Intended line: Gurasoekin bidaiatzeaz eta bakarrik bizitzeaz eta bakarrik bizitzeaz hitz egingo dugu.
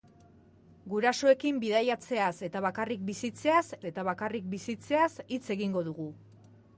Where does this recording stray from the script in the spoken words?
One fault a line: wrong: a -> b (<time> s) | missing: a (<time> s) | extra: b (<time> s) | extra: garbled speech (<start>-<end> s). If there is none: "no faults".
no faults